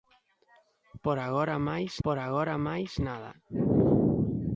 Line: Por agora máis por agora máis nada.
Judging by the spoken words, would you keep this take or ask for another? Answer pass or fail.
pass